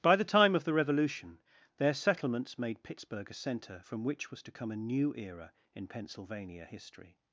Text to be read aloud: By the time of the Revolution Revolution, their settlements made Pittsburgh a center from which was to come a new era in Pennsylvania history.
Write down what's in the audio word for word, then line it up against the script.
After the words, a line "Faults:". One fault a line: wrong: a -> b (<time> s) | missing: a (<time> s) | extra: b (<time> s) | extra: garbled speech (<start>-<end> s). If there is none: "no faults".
By the time of the Revolution, their settlements made Pittsburgh a center from which was to come a new era in Pennsylvania history.
Faults:
missing: Revolution (1.4 s)